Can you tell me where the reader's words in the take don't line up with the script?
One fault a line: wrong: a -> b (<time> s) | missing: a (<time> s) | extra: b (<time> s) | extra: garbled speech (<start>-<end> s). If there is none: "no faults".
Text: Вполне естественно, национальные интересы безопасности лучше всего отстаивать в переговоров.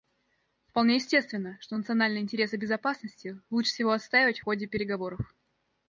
extra: что (1.6 s)
extra: ходе (4.4 s)